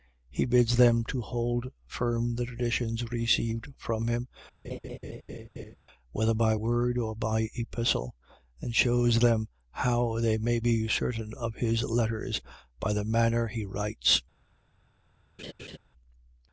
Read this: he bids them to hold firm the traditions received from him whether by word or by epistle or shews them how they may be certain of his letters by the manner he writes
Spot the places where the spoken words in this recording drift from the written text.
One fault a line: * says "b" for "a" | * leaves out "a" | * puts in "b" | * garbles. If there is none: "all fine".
* says "and" for "or"